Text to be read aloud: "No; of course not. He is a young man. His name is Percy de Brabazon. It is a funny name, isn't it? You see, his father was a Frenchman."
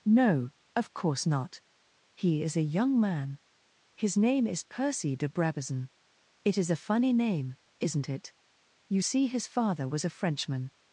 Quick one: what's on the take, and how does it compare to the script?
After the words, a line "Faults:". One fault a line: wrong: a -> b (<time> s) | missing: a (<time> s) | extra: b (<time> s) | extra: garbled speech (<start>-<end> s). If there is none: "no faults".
"No; of course not. He is a young man. His name is Percy de Brabazon. It is a funny name, isn't it? You see, his father was a Frenchman."
Faults:
no faults